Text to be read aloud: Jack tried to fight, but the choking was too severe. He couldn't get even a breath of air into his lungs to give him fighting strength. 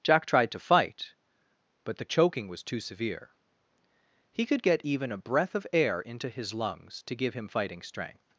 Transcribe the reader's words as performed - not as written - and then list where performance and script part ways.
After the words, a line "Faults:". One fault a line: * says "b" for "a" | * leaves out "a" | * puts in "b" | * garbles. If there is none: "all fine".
Jack tried to fight, but the choking was too severe. He could get even a breath of air into his lungs to give him fighting strength.
Faults:
* says "could" for "couldn't"